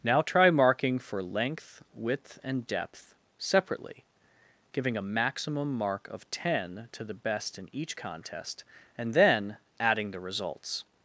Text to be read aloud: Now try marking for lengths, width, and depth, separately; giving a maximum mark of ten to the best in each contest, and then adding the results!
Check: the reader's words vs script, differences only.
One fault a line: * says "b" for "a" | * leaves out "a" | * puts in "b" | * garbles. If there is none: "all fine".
* says "length" for "lengths"